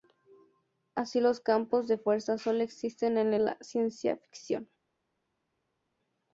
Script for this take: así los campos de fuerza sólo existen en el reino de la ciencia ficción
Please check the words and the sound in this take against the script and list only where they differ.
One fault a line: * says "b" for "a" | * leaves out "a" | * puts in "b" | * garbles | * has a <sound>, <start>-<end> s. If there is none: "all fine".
* leaves out "el reino de"